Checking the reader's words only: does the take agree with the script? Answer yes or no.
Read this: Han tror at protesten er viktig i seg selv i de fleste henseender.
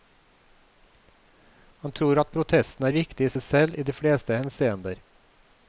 yes